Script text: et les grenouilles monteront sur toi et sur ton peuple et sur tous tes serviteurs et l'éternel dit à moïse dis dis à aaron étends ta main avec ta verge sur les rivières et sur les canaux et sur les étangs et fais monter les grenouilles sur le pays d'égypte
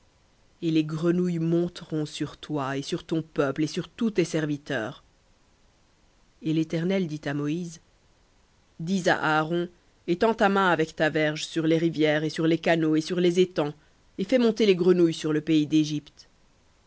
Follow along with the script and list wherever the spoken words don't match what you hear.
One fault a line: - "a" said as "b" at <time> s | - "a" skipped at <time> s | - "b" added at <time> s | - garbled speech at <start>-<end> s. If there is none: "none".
- "dis" skipped at 9.1 s